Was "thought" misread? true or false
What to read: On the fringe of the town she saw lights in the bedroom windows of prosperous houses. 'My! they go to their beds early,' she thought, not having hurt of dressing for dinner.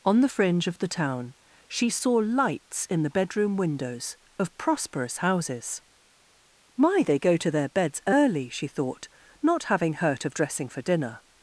false